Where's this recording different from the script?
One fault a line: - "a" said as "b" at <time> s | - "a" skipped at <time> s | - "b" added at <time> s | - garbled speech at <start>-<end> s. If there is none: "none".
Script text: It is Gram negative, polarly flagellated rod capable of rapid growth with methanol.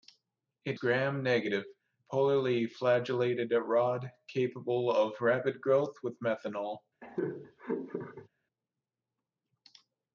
- "is" skipped at 0.8 s